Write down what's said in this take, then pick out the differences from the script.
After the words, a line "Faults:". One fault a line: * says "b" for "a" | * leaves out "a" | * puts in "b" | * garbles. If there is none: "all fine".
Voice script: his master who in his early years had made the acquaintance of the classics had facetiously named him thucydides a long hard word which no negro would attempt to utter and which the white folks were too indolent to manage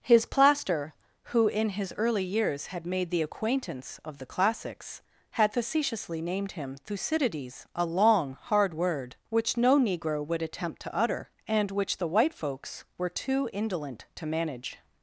his plaster who in his early years had made the acquaintance of the classics had facetiously named him thucydides a long hard word which no negro would attempt to utter and which the white folks were too indolent to manage
Faults:
* says "plaster" for "master"